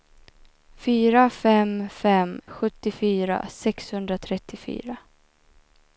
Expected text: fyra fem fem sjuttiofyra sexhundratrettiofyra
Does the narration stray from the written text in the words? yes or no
no